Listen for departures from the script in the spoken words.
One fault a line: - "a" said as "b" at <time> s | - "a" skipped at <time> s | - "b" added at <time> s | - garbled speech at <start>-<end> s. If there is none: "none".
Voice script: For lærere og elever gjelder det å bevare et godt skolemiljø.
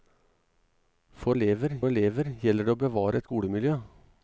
- "lærere" said as "elever" at 1.4 s
- "godt" skipped at 3.3 s